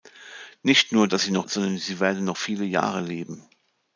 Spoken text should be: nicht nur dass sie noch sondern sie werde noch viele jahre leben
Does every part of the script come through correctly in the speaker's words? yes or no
yes